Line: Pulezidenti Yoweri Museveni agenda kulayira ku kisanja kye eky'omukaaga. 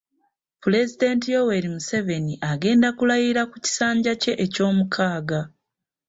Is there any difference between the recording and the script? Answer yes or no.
no